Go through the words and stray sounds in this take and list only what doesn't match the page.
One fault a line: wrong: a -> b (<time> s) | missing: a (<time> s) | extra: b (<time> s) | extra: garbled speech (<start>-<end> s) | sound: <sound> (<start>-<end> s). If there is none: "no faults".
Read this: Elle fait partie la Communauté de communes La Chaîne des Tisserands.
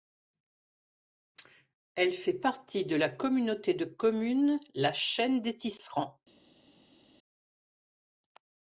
extra: de (2.9 s)